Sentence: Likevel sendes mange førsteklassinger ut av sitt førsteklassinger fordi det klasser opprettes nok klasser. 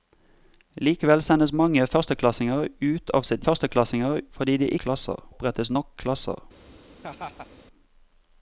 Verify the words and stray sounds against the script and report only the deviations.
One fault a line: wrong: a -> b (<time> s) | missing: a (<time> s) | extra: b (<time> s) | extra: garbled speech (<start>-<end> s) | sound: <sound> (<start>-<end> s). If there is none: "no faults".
sound: laugh (7.0-7.5 s)